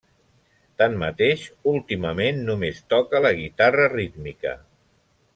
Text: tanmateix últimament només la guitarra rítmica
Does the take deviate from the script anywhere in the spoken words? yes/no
yes